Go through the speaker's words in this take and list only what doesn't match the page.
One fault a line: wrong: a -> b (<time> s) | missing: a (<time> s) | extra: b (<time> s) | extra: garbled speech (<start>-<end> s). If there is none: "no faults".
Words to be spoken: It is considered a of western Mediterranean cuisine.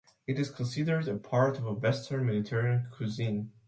extra: part (1.1 s)